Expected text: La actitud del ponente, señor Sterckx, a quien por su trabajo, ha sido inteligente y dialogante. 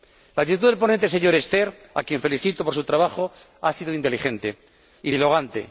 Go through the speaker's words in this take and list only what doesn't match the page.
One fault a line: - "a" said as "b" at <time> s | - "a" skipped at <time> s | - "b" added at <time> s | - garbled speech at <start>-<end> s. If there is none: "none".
- "felicito" added at 2.2 s